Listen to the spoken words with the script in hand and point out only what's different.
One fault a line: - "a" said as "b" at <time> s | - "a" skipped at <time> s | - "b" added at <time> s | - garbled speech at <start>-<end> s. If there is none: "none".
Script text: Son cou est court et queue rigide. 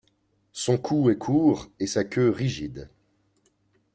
- "sa" added at 1.9 s